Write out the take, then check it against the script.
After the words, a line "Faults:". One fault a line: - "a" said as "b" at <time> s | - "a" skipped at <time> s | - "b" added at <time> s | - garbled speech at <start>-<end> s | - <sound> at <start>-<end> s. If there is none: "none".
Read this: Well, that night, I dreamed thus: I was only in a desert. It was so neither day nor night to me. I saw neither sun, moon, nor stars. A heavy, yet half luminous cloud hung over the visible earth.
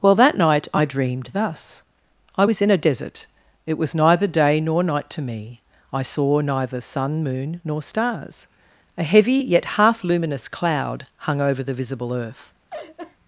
Well, that night, I dreamed thus: I was in a desert. It was neither day nor night to me. I saw neither sun, moon, nor stars. A heavy, yet half luminous cloud hung over the visible earth.
Faults:
- "only" skipped at 2.6 s
- "so" skipped at 4.0 s
- laugh at 12.7-13.2 s